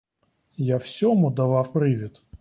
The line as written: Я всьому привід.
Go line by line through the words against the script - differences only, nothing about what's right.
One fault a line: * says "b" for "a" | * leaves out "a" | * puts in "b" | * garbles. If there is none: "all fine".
* puts in "давав"